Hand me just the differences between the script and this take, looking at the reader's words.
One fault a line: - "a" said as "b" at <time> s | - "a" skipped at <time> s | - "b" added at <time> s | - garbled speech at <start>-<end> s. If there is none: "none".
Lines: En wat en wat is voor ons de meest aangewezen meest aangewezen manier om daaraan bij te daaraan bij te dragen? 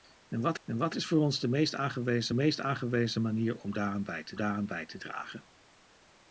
none